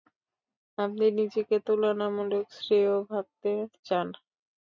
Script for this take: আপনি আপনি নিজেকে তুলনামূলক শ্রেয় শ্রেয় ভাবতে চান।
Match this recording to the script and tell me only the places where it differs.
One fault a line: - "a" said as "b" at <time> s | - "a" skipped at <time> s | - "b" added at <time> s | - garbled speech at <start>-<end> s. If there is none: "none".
- "আপনি" skipped at 1.1 s
- "শ্রেয়" skipped at 2.9 s